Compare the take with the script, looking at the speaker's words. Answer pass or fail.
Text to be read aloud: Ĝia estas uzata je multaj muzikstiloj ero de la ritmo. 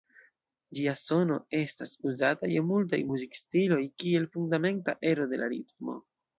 fail